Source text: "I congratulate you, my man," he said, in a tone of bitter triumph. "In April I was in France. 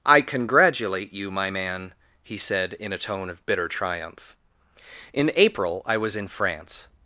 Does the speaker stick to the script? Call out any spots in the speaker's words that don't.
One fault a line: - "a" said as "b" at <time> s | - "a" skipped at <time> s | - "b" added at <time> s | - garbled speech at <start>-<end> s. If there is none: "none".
none